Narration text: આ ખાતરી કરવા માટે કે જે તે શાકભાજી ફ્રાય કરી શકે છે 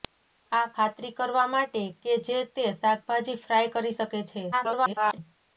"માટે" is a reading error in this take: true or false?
false